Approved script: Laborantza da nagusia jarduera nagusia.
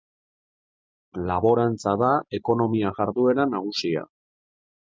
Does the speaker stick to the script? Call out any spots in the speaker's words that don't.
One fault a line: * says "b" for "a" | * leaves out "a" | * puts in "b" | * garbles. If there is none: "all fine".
* says "ekonomia" for "nagusia"